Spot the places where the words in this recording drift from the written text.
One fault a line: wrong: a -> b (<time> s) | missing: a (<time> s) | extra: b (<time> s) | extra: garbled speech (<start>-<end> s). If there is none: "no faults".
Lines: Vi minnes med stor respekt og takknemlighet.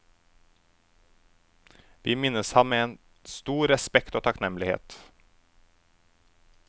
extra: ham (2.5 s)